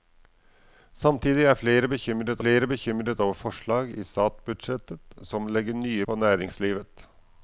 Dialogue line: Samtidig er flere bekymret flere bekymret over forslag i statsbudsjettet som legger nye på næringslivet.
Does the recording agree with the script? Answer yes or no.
yes